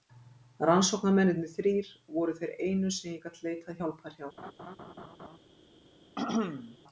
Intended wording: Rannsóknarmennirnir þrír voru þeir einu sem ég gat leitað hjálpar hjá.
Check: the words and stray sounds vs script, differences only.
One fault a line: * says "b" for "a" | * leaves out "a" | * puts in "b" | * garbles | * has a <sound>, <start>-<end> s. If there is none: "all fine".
* has a laugh, 4.4-5.4 s
* has a throat clearing, 6.2-6.8 s